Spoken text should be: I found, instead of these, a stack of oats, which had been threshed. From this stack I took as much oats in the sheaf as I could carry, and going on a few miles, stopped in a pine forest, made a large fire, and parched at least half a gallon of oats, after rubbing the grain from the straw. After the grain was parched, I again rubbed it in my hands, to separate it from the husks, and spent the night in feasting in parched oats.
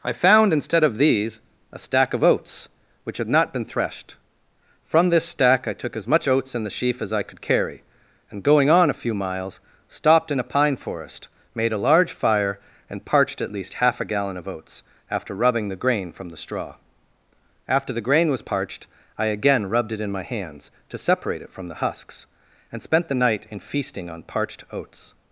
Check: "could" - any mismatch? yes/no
no